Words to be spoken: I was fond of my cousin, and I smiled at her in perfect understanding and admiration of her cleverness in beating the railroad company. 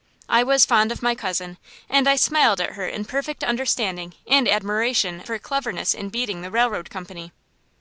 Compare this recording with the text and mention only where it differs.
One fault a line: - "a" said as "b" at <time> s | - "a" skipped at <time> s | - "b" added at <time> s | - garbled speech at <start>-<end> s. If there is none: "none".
- "of" skipped at 5.2 s